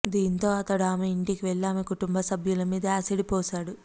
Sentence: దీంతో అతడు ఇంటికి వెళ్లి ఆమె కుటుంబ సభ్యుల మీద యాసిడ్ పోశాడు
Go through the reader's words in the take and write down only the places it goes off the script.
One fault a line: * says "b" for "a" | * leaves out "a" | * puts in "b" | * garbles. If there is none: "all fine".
* puts in "ఆమె"